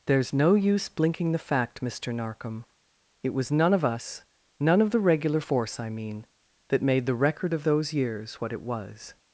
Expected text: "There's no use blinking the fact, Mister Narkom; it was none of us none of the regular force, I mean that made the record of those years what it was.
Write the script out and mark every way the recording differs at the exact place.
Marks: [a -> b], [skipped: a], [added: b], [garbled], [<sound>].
"There's no use blinking the fact, Mister Narkom; it was none of us none of the regular force, I mean that made the record of those years what it was.